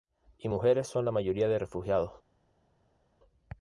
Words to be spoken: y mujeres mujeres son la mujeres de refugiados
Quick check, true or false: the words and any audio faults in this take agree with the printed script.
false